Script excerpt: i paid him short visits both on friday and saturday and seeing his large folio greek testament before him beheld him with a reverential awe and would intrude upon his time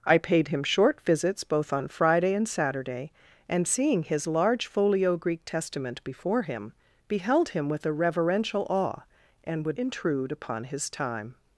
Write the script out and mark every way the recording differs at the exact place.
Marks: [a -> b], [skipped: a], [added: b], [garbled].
i paid him short visits both on friday and saturday and seeing his large folio greek testament before him beheld him with a reverential awe and would intrude upon his time